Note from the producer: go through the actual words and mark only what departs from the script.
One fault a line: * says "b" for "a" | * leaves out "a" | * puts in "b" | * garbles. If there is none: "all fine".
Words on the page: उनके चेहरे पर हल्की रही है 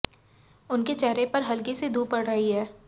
* puts in "सी धूप पड़"